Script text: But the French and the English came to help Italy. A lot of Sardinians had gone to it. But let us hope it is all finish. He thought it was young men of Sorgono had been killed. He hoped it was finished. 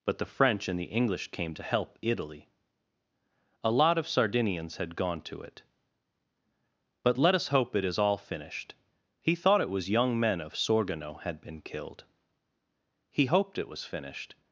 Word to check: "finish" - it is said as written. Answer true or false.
false